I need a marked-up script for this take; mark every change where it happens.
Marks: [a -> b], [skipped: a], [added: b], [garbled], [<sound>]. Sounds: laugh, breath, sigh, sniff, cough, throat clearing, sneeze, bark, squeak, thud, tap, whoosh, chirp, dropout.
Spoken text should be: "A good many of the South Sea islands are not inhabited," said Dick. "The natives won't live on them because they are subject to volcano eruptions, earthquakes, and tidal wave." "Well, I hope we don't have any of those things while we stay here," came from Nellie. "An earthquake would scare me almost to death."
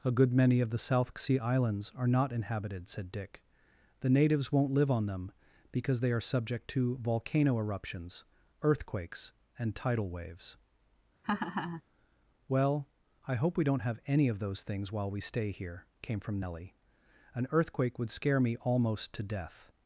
"A good many of the South Sea islands are not inhabited," said Dick. "The natives won't live on them because they are subject to volcano eruptions, earthquakes, and tidal [wave." -> waves] [laugh] "Well, I hope we don't have any of those things while we stay here," came from Nellie. "An earthquake would scare me almost to death."